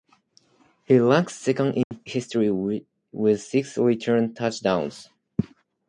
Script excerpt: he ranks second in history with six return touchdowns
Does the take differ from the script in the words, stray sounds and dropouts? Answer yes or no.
yes